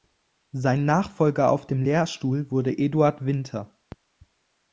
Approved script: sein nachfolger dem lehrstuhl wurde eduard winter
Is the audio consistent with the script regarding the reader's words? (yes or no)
no